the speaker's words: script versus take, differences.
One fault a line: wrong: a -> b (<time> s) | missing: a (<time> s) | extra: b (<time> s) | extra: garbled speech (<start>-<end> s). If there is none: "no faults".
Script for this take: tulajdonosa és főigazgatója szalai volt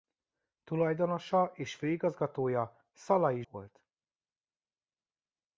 no faults